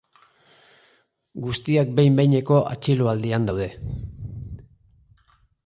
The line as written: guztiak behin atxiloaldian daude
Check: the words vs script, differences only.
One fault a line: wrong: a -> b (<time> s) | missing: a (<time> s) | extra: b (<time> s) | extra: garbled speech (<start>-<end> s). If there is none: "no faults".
extra: behineko (2.2 s)